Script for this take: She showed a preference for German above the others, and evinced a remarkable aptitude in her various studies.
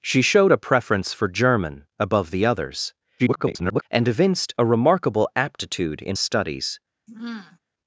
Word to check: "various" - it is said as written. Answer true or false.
false